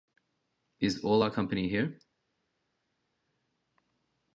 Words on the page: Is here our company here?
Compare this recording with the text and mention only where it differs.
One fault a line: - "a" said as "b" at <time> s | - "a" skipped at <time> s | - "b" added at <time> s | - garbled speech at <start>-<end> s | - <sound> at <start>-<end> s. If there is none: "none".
- "here" said as "all" at 1.0 s